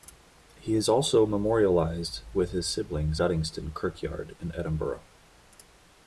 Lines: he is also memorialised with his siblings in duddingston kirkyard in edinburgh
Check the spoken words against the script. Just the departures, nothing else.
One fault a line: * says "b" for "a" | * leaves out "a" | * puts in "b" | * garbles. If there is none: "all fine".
* leaves out "in"